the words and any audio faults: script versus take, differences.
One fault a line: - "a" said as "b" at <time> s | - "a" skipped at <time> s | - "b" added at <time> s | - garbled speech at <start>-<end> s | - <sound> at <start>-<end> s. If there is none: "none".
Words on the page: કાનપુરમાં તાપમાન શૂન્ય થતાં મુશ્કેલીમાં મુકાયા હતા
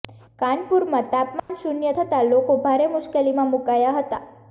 - dropout at 1.4-1.5 s
- "લોકો ભારે" added at 2.3 s